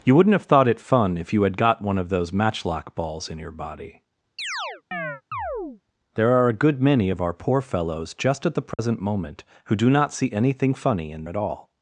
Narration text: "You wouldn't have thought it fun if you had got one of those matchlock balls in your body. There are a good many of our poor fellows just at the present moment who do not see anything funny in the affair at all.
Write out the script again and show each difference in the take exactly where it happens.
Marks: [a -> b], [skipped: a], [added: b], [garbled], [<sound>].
"You wouldn't have thought it fun if you had got one of those matchlock balls in your body. [chirp] There are a good many of our poor fellows just at the present [dropout] moment who do not see anything funny in [skipped: the affair] at all.